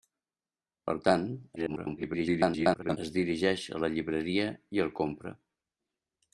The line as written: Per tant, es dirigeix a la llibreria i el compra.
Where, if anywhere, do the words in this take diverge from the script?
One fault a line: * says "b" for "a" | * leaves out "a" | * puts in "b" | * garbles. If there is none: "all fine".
* garbles